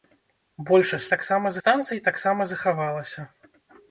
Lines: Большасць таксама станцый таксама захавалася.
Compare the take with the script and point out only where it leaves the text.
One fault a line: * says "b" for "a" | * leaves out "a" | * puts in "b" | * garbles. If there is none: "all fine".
all fine